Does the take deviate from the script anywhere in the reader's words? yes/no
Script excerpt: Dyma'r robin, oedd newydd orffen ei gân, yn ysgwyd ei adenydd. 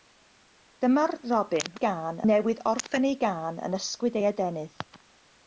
yes